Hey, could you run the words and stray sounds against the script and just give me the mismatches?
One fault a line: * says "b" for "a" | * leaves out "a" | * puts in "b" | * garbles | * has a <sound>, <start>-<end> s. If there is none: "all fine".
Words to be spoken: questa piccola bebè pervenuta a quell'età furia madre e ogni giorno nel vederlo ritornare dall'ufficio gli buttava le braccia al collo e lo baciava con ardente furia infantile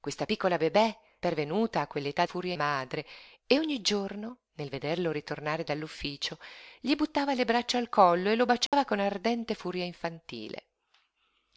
* has a dropout, 8.7-8.7 s